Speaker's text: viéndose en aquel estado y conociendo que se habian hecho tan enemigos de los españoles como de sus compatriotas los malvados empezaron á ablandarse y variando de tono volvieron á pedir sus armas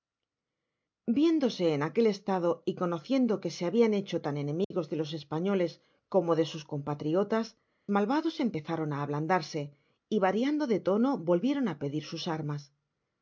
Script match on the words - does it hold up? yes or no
no